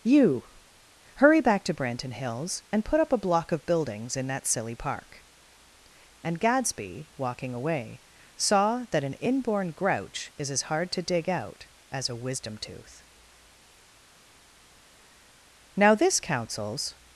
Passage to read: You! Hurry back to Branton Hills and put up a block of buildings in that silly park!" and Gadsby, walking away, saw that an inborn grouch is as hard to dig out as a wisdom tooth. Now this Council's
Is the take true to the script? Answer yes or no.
yes